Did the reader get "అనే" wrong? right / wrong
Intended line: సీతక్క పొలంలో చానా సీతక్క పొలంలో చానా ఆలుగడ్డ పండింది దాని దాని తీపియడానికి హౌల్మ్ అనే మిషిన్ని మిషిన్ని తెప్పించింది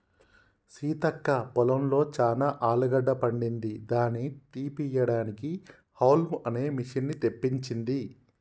right